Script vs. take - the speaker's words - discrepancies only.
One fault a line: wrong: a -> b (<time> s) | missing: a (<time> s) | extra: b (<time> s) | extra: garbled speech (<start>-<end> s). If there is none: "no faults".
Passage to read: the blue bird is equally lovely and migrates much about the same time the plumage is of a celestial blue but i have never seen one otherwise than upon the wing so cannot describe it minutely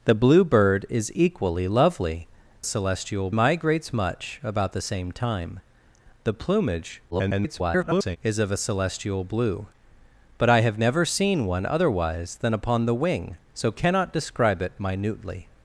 wrong: and -> celestial (2.6 s)
extra: garbled speech (7.1-8.2 s)